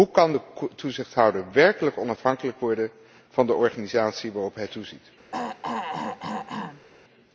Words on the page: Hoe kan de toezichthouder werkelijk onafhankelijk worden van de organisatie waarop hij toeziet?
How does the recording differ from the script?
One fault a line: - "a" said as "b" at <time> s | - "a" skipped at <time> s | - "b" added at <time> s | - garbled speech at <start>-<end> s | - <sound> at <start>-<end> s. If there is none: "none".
- throat clearing at 5.3-6.9 s